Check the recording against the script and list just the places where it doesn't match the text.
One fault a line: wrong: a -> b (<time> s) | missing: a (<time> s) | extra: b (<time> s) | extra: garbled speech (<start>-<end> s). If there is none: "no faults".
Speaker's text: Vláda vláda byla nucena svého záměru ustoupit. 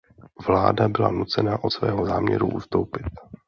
missing: vláda (0.9 s)
extra: od (1.6 s)